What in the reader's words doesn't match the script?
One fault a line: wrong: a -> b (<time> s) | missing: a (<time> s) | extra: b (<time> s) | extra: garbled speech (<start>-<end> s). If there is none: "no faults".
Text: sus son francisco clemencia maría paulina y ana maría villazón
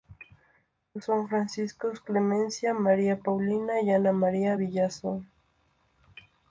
no faults